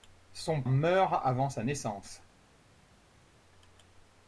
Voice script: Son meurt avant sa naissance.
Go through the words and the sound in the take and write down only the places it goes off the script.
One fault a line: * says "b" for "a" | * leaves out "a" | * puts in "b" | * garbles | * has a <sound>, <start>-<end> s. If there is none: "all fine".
all fine